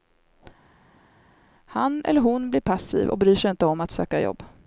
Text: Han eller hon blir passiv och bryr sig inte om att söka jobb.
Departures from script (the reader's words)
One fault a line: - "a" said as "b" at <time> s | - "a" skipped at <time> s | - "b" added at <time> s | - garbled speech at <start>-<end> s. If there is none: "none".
none